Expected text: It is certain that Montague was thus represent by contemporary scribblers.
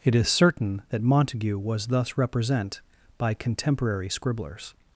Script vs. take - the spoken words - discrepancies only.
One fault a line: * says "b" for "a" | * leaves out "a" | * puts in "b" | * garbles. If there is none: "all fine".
all fine